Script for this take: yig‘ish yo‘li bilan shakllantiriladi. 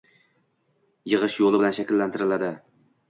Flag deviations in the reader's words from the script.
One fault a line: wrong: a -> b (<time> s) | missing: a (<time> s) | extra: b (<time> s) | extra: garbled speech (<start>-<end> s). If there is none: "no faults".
no faults